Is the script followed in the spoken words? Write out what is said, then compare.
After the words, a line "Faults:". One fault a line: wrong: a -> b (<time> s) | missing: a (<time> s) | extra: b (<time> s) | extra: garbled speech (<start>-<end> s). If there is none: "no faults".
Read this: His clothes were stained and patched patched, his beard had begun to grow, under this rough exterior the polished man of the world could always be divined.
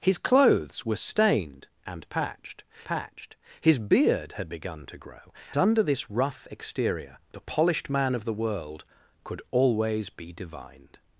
His clothes were stained and patched patched, his beard had begun to grow, under this rough exterior the polished man of the world could always be divined.
Faults:
no faults